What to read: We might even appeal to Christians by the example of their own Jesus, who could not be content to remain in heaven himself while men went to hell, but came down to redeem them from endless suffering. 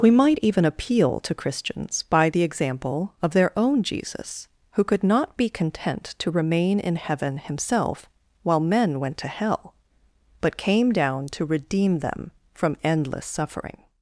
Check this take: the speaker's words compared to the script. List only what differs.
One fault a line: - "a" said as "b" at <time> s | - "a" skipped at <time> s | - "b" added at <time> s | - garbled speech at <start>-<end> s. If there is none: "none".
none